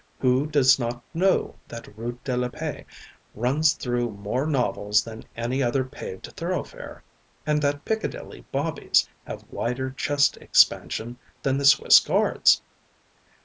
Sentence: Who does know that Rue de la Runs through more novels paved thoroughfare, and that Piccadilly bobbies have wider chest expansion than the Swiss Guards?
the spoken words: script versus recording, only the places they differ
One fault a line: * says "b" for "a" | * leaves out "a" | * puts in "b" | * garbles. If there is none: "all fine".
* puts in "not"
* puts in "Paix"
* puts in "than any other"